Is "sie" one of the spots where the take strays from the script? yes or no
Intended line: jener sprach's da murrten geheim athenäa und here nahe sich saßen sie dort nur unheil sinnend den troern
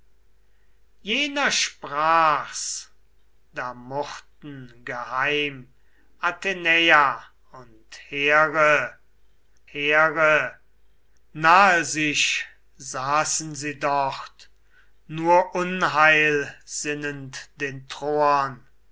no